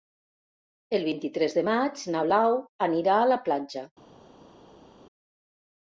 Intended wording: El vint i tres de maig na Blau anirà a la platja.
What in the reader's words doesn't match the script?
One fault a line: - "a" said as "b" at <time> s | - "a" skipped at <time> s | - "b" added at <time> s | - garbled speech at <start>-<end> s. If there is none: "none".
none